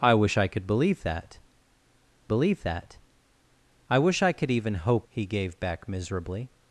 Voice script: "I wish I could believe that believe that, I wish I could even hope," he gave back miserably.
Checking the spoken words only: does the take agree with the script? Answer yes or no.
yes